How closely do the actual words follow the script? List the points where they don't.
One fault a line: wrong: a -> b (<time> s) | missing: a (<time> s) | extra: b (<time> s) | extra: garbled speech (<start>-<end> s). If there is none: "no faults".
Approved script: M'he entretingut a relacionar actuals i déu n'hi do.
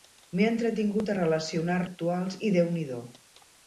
no faults